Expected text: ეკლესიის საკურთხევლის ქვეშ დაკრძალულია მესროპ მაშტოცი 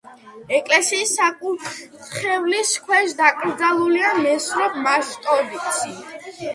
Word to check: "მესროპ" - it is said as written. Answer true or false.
true